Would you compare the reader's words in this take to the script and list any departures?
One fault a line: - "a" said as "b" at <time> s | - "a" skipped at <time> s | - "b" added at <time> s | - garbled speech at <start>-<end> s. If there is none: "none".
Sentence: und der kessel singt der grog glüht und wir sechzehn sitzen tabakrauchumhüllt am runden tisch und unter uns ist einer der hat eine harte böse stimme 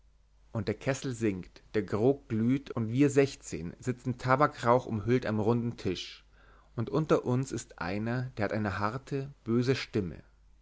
none